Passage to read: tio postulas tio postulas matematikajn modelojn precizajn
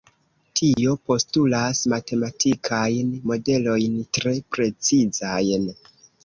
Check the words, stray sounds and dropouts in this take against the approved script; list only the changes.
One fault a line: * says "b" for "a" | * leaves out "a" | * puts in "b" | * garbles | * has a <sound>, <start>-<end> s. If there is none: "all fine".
* has a dropout, 0.7-0.8 s
* leaves out "tio postulas"
* puts in "tre"